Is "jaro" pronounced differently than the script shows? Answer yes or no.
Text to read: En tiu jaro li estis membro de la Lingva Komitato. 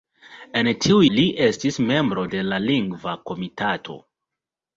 yes